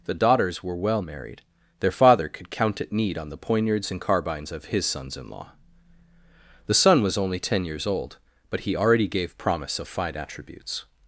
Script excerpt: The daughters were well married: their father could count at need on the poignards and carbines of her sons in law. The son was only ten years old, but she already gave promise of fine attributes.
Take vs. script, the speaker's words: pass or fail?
fail